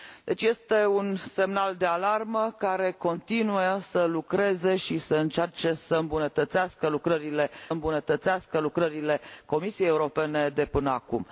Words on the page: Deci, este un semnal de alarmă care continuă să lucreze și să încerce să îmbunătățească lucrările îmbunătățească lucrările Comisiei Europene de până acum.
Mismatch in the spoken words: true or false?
false